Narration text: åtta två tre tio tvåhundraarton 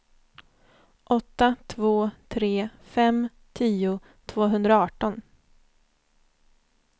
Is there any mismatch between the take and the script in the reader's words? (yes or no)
yes